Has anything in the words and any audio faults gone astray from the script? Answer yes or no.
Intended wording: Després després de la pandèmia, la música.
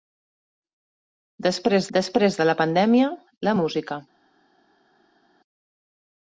no